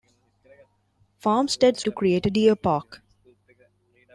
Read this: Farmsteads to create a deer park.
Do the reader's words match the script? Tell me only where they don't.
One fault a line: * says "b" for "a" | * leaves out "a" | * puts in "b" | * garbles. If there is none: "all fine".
all fine